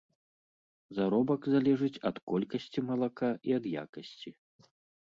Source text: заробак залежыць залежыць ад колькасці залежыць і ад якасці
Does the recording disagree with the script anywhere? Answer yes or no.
yes